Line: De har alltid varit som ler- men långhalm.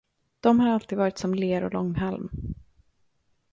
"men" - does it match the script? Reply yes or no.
no